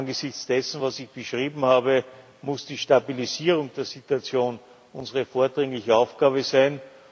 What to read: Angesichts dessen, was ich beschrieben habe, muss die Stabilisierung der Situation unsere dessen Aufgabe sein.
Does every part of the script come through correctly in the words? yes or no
no